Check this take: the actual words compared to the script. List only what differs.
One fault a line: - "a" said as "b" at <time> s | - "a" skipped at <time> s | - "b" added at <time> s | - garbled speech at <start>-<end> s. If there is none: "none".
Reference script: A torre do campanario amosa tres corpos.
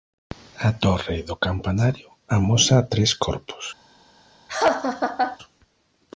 none